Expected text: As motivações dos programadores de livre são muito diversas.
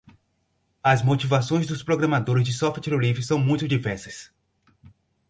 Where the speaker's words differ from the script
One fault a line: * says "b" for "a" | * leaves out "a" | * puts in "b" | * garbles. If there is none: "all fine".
* puts in "software"